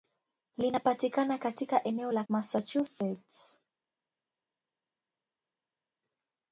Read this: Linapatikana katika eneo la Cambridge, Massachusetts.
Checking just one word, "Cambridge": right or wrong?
wrong